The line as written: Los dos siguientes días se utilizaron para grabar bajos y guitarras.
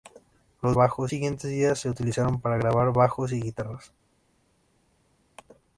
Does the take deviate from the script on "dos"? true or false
true